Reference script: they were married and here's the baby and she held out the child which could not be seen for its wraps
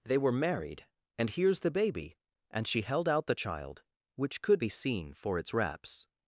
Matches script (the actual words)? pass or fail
fail